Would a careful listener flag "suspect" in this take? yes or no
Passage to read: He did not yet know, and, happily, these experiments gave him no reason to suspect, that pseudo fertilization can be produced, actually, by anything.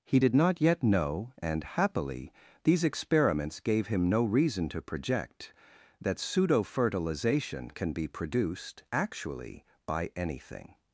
yes